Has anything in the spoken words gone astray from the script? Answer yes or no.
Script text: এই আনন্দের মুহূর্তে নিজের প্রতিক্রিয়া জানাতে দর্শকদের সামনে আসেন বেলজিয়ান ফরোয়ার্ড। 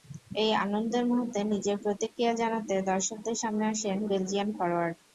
no